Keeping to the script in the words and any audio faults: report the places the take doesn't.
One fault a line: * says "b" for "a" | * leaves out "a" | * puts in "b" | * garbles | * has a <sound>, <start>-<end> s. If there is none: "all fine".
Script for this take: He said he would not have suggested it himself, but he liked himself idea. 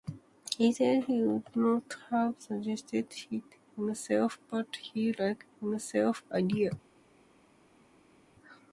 all fine